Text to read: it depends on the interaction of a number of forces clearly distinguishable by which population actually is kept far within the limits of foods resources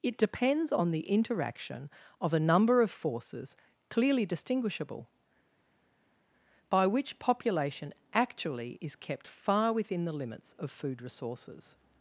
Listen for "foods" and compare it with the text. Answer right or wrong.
wrong